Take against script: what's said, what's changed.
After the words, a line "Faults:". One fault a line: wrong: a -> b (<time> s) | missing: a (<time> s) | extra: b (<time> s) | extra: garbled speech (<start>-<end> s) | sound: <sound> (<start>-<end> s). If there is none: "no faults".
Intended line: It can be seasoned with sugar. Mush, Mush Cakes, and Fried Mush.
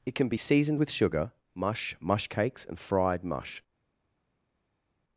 It can be seasoned with sugar. Mush, Mush Cakes, and Fried Mush.
Faults:
no faults